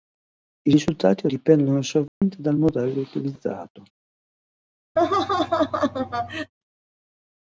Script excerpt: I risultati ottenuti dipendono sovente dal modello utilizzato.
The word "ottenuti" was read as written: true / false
false